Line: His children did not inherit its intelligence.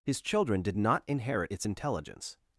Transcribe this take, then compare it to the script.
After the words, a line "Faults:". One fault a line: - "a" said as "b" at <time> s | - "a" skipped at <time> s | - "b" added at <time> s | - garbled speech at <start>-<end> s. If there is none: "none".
His children did not inherit its intelligence.
Faults:
none